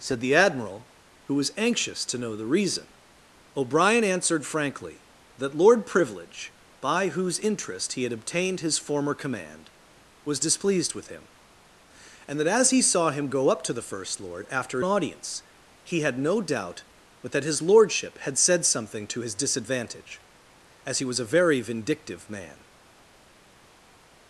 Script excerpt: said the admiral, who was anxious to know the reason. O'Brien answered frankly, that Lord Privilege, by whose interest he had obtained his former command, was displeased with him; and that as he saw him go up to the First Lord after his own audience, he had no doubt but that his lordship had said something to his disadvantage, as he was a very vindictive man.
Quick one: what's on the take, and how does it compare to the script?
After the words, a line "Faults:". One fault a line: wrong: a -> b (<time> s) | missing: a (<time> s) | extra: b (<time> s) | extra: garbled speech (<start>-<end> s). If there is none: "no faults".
said the admiral, who was anxious to know the reason. O'Brien answered frankly, that Lord Privilege, by whose interest he had obtained his former command, was displeased with him; and that as he saw him go up to the First Lord after audience, he had no doubt but that his lordship had said something to his disadvantage, as he was a very vindictive man.
Faults:
missing: his own (14.8 s)